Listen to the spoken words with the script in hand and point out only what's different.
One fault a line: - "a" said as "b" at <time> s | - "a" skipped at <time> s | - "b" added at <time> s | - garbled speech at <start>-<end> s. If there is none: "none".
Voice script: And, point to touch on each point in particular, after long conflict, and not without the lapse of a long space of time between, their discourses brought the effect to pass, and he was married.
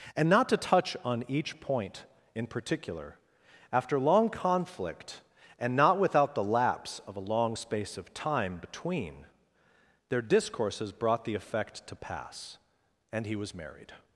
- "point" said as "not" at 0.3 s